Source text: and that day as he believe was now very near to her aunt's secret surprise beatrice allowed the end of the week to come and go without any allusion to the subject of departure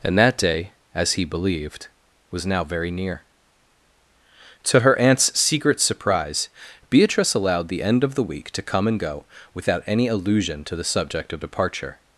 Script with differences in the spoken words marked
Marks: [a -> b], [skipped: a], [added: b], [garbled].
and that day as he [believe -> believed] was now very near to her aunt's secret surprise beatrice allowed the end of the week to come and go without any allusion to the subject of departure